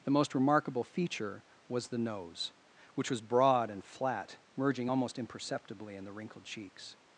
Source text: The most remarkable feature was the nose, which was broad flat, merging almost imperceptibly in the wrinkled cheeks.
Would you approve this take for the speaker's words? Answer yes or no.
no